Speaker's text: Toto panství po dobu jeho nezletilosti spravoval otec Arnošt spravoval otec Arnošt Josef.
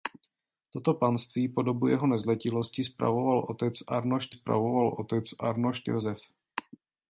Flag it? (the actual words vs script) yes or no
no